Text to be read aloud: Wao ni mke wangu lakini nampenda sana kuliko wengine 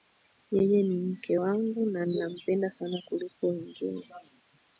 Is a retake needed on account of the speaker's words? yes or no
yes